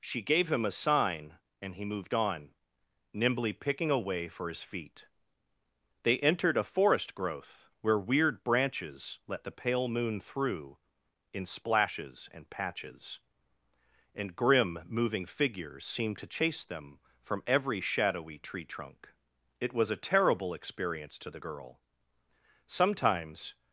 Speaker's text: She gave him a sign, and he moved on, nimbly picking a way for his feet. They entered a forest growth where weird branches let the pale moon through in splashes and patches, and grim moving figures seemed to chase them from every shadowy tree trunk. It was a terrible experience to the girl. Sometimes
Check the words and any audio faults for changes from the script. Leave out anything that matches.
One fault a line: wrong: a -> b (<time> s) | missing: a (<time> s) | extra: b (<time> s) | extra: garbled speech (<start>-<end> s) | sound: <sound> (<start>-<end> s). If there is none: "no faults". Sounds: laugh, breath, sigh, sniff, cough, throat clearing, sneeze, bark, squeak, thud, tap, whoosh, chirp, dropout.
no faults